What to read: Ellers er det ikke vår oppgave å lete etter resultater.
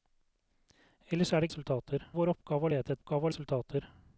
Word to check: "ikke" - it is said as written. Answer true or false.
false